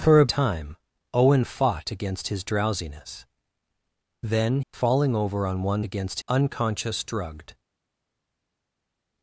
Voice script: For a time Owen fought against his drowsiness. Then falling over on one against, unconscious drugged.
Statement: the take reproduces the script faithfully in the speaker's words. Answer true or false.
true